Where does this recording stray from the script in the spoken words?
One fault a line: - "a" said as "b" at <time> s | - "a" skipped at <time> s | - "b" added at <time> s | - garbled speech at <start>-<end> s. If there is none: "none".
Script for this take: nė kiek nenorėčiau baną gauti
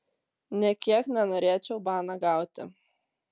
none